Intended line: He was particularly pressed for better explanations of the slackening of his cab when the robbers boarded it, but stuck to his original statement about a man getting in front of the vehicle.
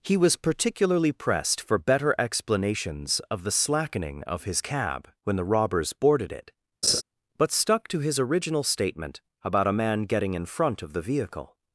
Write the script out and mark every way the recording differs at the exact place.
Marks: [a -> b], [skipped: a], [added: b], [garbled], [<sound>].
He was particularly pressed for better explanations of the slackening of his cab when the robbers boarded it, [laugh] but stuck to his original statement about a man getting in front of the vehicle.